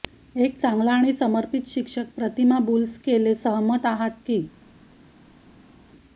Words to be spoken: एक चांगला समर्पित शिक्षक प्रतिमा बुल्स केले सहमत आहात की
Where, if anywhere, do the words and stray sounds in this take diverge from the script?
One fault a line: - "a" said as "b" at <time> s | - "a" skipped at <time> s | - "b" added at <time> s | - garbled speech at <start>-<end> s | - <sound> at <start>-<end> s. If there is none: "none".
- "आणि" added at 0.9 s